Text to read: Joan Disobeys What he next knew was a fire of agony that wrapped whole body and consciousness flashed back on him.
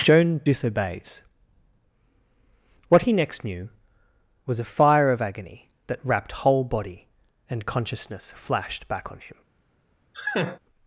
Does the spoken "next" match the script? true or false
true